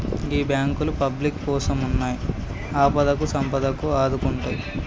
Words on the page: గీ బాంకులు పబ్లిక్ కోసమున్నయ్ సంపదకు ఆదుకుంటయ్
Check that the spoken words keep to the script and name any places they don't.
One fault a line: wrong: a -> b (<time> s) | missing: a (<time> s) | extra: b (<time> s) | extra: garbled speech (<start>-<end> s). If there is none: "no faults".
extra: ఆపదకు (2.8 s)